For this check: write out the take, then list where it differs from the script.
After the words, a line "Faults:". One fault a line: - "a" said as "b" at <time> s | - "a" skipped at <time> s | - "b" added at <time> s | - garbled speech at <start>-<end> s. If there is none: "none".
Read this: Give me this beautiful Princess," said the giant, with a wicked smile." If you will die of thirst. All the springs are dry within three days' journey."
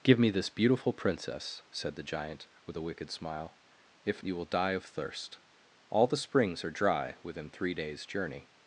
Give me this beautiful Princess," said the giant, with a wicked smile." If you will die of thirst. All the springs are dry within three days' journey."
Faults:
none